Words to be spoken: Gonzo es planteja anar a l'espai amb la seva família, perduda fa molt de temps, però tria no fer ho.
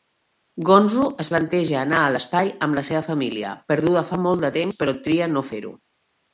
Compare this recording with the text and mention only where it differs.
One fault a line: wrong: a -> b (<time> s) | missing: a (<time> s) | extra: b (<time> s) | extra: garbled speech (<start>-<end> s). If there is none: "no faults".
no faults